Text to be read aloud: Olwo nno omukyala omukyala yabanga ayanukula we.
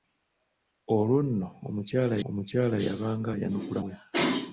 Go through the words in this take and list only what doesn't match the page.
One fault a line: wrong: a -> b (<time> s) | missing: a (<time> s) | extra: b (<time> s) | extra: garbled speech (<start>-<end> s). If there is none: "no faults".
no faults